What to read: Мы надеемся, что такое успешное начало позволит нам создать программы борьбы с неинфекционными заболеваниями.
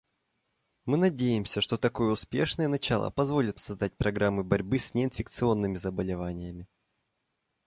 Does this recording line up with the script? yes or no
no